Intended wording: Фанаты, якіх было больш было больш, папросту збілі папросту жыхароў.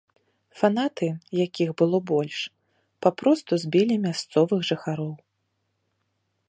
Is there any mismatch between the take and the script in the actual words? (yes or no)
yes